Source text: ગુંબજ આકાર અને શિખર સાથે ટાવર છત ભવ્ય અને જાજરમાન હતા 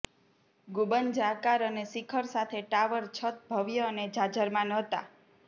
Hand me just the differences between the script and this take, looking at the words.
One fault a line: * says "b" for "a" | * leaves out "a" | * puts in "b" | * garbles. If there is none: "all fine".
all fine